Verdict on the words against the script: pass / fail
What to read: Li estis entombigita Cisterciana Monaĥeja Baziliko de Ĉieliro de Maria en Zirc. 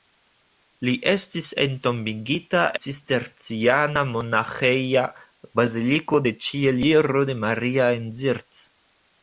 pass